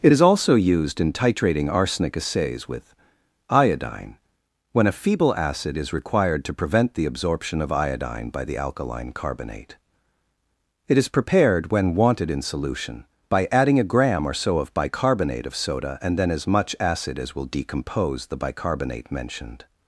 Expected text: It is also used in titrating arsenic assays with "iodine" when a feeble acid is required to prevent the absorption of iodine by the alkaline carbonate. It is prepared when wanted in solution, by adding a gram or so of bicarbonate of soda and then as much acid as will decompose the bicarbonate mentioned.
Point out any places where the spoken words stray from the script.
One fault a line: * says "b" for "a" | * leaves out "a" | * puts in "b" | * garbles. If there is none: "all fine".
all fine